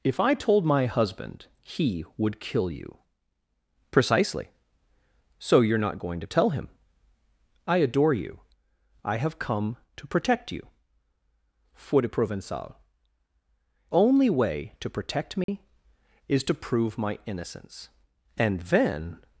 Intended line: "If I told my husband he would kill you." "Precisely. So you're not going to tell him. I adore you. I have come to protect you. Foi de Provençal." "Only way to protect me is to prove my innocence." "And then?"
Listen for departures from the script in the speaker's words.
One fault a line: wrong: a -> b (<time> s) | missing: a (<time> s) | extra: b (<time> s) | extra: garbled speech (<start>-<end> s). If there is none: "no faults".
no faults